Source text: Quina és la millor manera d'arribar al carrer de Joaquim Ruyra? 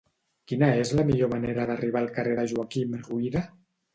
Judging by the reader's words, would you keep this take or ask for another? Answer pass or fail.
pass